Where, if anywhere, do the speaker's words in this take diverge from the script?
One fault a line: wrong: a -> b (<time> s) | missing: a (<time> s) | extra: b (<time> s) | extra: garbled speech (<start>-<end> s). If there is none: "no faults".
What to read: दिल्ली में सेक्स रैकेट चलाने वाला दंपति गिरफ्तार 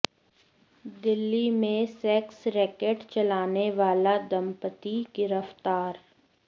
no faults